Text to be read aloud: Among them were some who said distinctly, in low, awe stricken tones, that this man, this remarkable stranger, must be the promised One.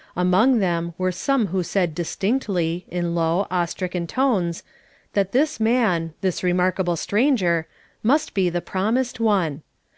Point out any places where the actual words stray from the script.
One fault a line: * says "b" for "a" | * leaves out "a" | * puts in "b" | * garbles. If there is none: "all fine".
all fine